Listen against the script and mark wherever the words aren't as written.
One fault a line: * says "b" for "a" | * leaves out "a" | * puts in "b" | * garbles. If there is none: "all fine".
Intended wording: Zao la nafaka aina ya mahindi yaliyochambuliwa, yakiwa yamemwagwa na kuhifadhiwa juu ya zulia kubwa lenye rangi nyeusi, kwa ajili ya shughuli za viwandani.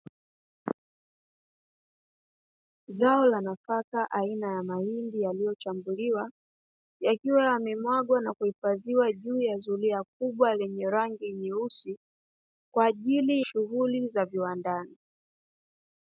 * leaves out "ya"